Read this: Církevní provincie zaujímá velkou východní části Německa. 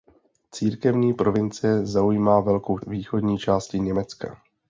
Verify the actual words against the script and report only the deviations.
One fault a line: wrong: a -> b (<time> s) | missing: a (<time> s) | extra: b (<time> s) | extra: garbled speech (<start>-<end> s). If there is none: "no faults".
no faults